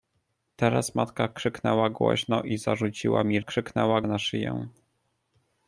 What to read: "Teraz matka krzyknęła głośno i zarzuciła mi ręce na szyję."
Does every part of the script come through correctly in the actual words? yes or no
no